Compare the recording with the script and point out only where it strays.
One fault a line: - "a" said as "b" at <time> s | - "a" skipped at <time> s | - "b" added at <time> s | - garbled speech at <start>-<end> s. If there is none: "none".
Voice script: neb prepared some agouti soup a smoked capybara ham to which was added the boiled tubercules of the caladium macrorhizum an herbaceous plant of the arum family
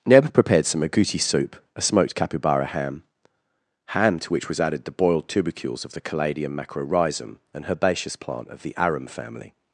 - "ham" added at 3.9 s